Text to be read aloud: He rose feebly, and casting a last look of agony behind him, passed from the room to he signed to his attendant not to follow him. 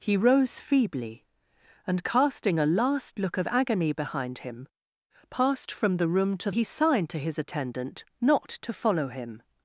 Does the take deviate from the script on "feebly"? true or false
false